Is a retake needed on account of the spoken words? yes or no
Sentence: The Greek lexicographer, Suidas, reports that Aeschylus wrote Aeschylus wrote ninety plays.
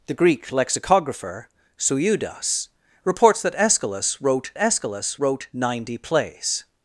no